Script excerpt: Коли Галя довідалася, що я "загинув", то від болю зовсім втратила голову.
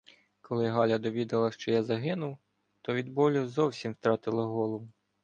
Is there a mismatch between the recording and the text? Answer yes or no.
no